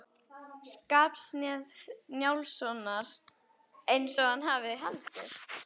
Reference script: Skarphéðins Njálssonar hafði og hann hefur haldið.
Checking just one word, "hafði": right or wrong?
wrong